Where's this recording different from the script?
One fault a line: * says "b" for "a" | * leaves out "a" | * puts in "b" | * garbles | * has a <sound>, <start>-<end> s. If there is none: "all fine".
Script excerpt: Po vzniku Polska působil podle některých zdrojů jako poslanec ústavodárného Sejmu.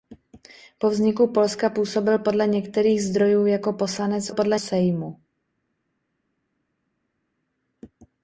* says "podle" for "ústavodárného"